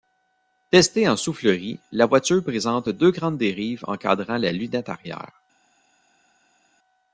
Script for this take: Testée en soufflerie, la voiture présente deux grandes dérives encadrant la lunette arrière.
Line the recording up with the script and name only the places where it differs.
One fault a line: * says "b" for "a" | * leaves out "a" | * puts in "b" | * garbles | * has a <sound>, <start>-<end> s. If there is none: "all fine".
all fine